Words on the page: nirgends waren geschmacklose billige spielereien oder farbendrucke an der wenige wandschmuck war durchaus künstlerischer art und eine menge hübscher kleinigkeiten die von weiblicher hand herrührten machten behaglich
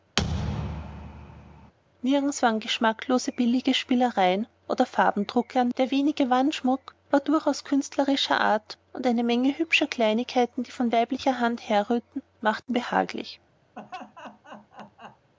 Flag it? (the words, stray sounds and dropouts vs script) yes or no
yes